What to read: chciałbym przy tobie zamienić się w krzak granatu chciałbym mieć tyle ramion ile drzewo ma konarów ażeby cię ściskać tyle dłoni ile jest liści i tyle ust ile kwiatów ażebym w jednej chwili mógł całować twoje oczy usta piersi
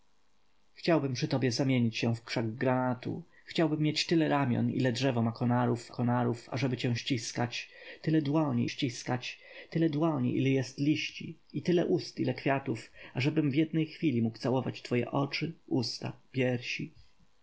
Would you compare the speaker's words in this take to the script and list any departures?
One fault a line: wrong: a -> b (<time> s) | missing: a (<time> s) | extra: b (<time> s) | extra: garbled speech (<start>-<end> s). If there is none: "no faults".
extra: konarów (5.9 s)
extra: ściskać tyle dłoni (8.7 s)